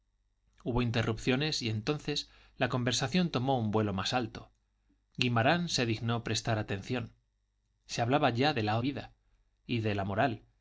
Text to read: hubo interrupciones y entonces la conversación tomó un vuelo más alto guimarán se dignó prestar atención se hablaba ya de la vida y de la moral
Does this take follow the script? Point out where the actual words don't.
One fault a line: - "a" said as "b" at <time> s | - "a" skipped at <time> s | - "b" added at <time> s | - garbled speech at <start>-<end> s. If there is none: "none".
none